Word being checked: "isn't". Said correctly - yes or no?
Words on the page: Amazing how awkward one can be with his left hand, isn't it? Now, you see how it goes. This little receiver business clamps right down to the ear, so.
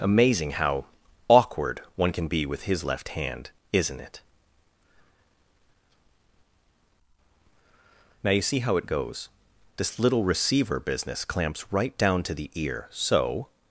yes